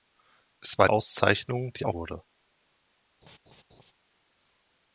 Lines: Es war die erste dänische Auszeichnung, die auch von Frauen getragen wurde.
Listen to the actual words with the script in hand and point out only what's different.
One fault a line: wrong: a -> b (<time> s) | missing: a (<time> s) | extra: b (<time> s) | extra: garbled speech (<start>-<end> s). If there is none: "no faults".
missing: die erste dänische (0.9 s)
missing: von Frauen getragen (1.9 s)